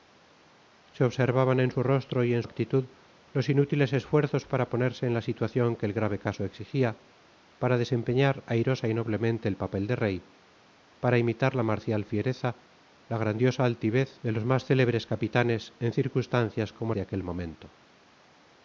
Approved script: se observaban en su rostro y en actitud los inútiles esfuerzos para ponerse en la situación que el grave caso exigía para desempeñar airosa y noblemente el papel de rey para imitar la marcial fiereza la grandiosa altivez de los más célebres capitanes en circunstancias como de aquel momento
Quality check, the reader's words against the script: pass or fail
pass